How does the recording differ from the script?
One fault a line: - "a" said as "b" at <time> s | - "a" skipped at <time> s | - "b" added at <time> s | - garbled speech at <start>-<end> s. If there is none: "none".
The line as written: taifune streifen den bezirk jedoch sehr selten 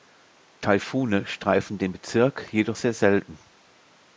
none